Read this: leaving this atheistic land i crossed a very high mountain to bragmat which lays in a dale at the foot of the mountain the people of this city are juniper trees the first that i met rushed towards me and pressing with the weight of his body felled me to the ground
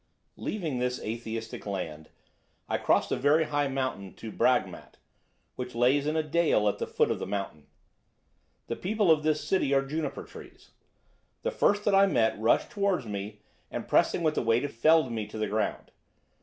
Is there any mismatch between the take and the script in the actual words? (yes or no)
yes